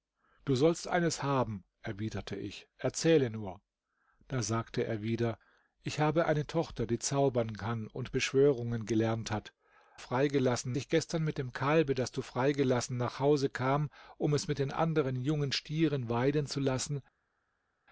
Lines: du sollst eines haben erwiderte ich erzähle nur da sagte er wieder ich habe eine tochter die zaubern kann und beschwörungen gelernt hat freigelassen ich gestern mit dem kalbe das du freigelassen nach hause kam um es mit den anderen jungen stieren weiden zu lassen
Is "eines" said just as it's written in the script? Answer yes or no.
yes